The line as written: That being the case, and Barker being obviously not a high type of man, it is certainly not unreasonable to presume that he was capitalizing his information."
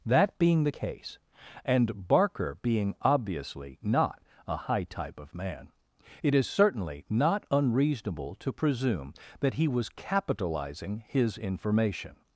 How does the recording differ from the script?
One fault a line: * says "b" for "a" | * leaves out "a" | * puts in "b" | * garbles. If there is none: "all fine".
all fine